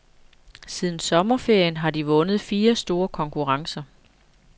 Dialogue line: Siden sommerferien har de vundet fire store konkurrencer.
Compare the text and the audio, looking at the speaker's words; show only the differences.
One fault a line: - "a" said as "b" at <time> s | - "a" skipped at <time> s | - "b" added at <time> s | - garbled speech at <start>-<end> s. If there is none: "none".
none